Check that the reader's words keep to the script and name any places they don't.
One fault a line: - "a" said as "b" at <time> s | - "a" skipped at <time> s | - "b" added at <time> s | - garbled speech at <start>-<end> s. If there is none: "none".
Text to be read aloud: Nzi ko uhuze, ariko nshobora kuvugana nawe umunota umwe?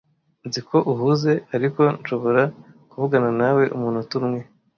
none